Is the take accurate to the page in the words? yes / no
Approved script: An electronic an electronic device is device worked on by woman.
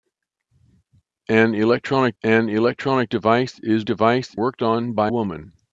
yes